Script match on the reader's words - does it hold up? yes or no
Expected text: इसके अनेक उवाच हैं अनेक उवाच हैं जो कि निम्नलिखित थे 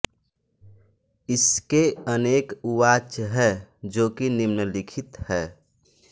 no